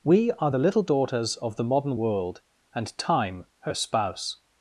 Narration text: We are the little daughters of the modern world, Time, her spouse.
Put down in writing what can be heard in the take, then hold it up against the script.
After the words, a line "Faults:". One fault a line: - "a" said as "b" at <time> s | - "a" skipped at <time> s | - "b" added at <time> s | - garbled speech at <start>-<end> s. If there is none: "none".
We are the little daughters of the modern world, And Time, her spouse.
Faults:
- "And" added at 2.7 s